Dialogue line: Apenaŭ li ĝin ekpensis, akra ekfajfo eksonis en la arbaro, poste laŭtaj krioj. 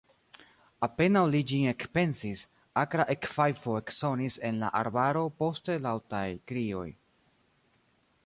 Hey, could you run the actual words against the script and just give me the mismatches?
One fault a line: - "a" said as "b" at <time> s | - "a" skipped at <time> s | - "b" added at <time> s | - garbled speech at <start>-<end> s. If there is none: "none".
none